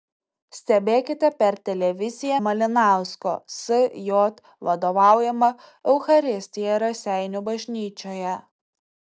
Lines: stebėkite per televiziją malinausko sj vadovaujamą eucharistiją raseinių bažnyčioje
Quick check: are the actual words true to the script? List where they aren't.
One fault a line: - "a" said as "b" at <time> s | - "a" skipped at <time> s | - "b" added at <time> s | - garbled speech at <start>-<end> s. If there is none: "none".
none